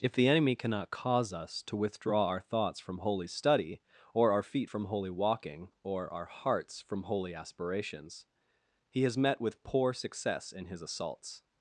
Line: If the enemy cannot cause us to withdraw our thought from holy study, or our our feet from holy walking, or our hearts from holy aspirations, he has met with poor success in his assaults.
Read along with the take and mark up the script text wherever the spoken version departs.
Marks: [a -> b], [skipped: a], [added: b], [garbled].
If the enemy cannot cause us to withdraw our [thought -> thoughts] from holy study, or our [skipped: our] feet from holy walking, or our hearts from holy aspirations, he has met with poor success in his assaults.